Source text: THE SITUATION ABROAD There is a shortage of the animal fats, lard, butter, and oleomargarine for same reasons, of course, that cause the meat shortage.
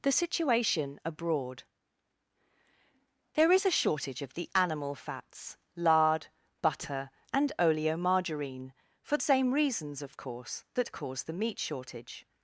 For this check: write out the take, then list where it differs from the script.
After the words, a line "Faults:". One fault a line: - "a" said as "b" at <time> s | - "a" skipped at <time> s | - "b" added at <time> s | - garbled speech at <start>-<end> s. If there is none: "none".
THE SITUATION ABROAD There is a shortage of the animal fats, lard, butter, and oleomargarine for same reasons, of course, that cause the meat shortage.
Faults:
none